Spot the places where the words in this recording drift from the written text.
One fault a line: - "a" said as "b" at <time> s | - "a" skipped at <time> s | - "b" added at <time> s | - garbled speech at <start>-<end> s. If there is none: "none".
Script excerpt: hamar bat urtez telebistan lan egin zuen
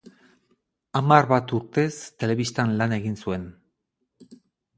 none